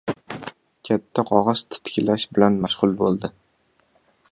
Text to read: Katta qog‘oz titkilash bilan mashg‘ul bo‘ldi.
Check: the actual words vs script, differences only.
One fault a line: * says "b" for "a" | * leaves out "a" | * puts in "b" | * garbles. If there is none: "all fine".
all fine